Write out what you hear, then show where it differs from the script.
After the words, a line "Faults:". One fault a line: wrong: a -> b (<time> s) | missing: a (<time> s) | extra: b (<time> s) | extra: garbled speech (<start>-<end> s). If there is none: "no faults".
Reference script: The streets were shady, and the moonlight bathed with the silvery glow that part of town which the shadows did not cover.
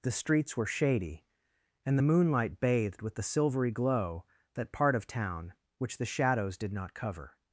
The streets were shady, and the moonlight bathed with the silvery glow that part of town which the shadows did not cover.
Faults:
no faults